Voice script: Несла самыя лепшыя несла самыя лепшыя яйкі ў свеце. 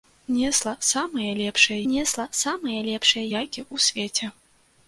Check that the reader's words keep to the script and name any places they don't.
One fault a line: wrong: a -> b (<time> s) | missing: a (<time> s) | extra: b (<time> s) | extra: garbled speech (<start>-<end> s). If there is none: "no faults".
no faults